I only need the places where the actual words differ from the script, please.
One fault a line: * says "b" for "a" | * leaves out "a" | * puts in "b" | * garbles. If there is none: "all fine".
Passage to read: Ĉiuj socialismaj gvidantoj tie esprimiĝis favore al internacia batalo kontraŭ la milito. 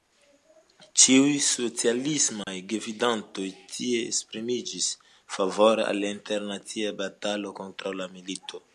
all fine